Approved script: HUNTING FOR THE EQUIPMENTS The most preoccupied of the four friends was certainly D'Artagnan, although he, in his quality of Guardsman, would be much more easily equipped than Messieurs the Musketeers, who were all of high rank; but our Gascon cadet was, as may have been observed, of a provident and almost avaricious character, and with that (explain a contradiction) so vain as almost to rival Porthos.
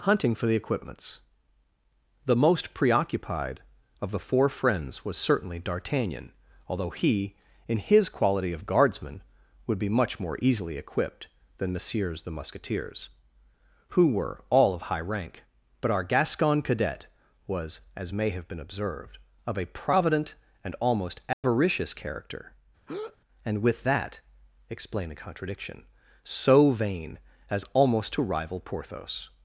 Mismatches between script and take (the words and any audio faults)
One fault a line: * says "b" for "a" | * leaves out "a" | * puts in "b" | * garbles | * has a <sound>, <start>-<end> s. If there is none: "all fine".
* has a dropout, 21.3-21.4 s
* has a breath, 22.9-23.2 s